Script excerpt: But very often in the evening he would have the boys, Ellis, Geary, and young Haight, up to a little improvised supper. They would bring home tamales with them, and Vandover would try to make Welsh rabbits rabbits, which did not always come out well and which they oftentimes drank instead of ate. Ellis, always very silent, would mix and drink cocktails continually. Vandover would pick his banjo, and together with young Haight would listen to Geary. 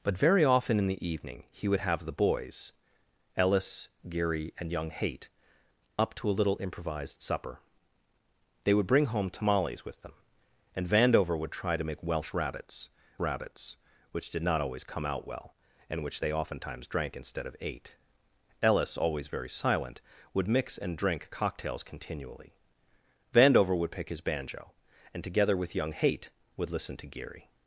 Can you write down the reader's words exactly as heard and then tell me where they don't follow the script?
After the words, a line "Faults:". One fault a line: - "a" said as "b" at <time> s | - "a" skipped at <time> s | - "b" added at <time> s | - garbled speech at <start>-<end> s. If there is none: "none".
But very often in the evening he would have the boys, Ellis, Geary, and young Haight, up to a little improvised supper. They would bring home tamales with them, and Vandover would try to make Welsh rabbits rabbits, which did not always come out well and which they oftentimes drank instead of ate. Ellis, always very silent, would mix and drink cocktails continually. Vandover would pick his banjo, and together with young Haight would listen to Geary.
Faults:
none